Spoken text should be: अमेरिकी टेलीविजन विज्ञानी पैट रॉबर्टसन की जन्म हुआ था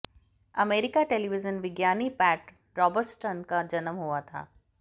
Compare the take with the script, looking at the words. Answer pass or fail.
fail